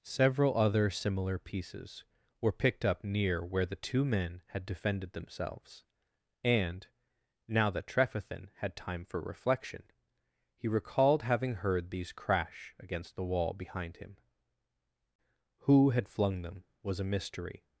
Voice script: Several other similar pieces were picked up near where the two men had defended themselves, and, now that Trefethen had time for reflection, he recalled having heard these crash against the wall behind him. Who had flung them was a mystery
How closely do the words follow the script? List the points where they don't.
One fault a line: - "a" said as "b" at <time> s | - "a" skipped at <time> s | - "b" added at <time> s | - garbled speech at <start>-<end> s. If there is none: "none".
none